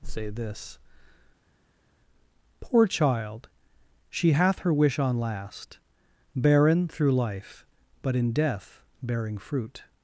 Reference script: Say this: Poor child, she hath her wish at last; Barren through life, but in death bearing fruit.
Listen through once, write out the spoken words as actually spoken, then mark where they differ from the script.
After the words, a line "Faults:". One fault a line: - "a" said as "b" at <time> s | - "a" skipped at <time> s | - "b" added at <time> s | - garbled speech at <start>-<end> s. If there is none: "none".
Say this: Poor child, she hath her wish on last; Barren through life, but in death bearing fruit.
Faults:
- "at" said as "on" at 5.0 s